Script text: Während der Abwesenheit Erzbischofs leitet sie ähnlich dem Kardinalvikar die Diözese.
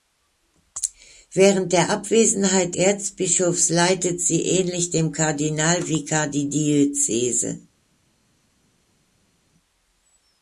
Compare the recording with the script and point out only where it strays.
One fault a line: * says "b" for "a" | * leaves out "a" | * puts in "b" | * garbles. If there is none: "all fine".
all fine